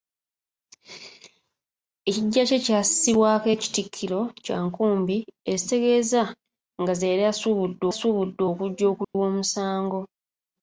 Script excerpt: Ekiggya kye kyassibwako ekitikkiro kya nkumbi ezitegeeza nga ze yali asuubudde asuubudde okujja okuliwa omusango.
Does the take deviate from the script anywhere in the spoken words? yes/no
no